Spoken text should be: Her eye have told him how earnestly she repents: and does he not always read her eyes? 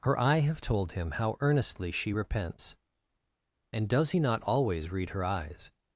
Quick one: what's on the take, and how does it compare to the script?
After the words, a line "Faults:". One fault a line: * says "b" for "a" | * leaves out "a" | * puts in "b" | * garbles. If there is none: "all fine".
Her eye have told him how earnestly she repents: and does he not always read her eyes?
Faults:
all fine